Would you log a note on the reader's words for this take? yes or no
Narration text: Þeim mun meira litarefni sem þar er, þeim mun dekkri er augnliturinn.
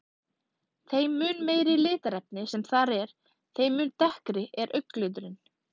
no